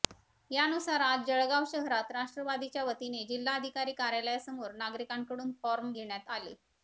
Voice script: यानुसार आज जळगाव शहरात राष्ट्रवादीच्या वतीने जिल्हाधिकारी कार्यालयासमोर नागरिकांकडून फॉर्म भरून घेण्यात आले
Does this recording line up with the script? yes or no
no